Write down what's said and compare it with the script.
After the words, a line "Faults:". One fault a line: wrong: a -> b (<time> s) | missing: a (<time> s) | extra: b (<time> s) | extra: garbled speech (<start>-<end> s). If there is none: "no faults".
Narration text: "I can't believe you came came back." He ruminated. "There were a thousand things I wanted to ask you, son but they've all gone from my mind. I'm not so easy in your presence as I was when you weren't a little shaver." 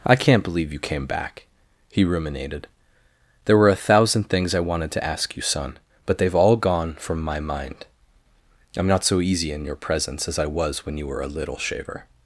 "I can't believe you came back." He ruminated. "There were a thousand things I wanted to ask you, son but they've all gone from my mind. I'm not so easy in your presence as I was when you were a little shaver."
Faults:
missing: came (1.1 s)
wrong: weren't -> were (11.1 s)